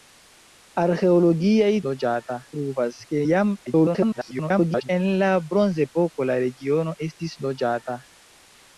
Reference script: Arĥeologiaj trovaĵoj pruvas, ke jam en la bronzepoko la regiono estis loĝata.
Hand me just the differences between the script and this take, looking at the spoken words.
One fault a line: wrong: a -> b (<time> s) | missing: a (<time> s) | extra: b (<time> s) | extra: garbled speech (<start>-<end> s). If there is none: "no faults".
wrong: trovaĵoj -> loĝata (1.9 s)
extra: garbled speech (3.7-4.9 s)